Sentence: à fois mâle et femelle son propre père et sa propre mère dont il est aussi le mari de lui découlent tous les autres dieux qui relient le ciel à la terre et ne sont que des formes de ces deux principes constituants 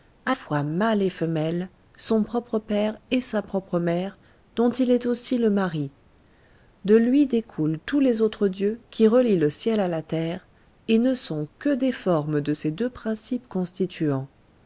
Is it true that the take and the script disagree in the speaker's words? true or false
false